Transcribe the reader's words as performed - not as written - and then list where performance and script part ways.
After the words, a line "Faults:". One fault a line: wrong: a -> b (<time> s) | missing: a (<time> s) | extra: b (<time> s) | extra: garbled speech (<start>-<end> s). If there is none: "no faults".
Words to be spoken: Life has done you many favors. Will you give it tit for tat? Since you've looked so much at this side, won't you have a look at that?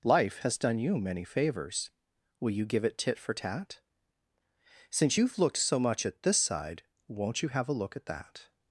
Life has done you many favors. Will you give it tit for tat? Since you've looked so much at this side, won't you have a look at that?
Faults:
no faults